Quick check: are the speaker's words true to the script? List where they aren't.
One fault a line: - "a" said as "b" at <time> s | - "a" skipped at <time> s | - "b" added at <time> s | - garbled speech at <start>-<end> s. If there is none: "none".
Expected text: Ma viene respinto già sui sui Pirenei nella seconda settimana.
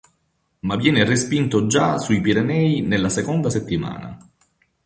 - "sui" skipped at 2.2 s